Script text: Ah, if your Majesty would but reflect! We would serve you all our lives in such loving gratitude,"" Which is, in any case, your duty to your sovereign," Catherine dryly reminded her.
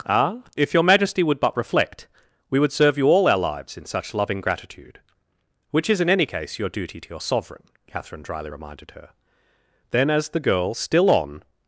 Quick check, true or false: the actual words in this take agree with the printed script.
false